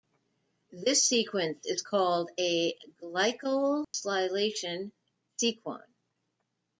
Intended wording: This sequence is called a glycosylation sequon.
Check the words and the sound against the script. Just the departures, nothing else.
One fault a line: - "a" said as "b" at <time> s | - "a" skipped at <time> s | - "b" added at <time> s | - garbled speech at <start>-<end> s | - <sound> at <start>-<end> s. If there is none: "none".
- dropout at 3.8-3.9 s